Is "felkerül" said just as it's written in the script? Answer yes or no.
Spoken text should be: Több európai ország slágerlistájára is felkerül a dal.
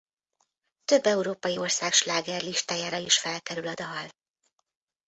yes